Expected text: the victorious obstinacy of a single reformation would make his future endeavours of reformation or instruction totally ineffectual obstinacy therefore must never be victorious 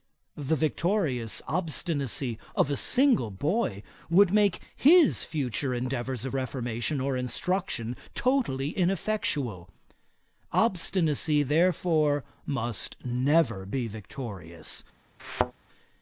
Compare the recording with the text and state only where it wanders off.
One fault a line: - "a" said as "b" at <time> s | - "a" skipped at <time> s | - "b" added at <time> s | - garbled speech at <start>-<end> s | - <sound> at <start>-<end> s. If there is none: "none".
- "reformation" said as "boy" at 3.3 s
- thud at 15.2-15.5 s